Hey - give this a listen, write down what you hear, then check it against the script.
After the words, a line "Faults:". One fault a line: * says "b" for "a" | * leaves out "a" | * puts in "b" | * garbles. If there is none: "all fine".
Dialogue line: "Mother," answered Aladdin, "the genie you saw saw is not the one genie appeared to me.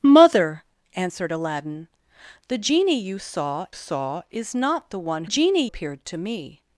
"Mother," answered Aladdin, "the genie you saw saw is not the one genie appeared to me.
Faults:
all fine